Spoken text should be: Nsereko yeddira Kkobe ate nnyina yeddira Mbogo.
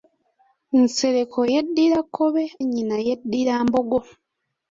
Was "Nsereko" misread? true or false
false